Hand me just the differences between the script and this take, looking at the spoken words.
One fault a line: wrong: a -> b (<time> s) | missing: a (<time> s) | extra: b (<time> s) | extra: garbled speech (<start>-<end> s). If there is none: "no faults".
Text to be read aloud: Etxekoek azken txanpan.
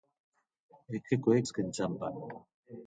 no faults